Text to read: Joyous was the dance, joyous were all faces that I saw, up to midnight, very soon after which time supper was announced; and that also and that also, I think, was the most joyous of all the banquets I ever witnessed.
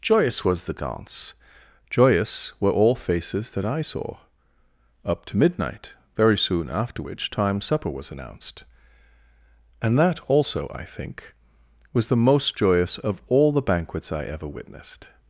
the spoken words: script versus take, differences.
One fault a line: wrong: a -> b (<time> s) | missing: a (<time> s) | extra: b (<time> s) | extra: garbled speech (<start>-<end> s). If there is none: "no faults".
missing: and that also (10.7 s)